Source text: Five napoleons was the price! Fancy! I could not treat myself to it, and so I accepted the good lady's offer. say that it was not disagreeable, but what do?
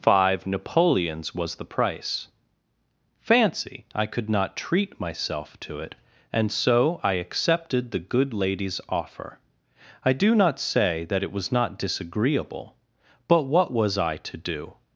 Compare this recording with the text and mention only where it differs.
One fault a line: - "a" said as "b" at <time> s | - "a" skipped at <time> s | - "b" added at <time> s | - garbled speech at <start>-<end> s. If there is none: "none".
- "I do not" added at 10.0 s
- "was I to" added at 13.7 s